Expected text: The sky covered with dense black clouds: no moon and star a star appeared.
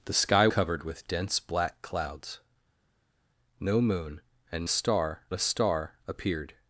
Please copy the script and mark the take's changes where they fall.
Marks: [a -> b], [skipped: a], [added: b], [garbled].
The sky covered with dense black clouds: no moon and star a star appeared.